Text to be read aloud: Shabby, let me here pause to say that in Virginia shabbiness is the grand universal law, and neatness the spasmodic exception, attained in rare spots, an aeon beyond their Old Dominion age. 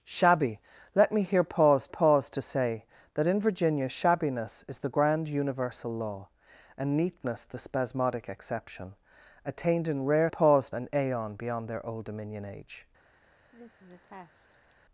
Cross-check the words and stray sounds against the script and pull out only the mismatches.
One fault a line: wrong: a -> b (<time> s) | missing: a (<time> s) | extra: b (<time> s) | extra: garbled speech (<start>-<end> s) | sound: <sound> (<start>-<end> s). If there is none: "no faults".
extra: pause (1.9 s)
wrong: spots -> pause (10.3 s)
sound: cough (13.5-14.7 s)